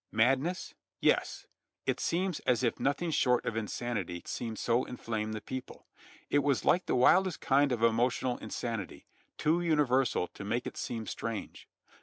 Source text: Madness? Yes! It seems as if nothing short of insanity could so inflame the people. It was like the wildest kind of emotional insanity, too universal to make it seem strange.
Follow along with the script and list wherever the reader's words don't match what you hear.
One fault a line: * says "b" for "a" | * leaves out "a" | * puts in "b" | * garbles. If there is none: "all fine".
* says "seem" for "could"